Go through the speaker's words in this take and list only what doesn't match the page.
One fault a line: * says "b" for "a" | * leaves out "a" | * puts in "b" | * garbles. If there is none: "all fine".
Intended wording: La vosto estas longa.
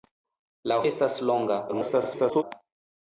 * leaves out "vosto"
* garbles